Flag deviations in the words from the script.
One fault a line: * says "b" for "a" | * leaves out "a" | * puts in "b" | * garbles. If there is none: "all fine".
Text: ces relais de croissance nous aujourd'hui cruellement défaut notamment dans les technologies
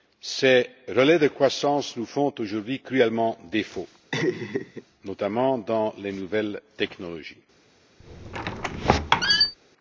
* puts in "font"
* puts in "nouvelles"